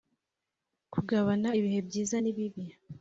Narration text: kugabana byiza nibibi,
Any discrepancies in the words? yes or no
yes